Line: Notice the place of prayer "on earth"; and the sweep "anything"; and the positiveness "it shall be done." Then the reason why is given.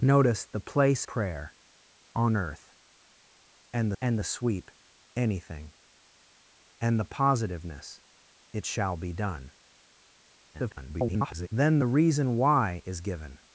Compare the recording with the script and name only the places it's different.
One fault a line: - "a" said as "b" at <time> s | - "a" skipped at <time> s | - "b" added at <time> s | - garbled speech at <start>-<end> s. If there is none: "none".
- "of" skipped at 1.1 s
- "and" added at 4.0 s
- garbled speech at 10.5-11.5 s